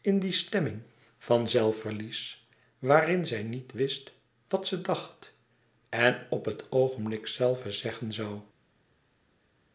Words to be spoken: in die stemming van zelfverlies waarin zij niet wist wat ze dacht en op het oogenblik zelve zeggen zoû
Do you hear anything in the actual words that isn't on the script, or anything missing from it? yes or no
no